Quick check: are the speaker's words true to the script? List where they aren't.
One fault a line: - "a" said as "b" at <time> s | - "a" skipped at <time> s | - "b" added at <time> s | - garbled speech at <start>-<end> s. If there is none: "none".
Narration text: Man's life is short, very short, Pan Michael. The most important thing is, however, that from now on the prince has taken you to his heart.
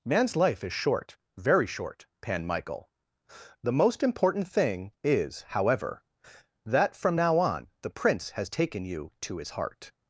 none